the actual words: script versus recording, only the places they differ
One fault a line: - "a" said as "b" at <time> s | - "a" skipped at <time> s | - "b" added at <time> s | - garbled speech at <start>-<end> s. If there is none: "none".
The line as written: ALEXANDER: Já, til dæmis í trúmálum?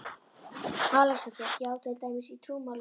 none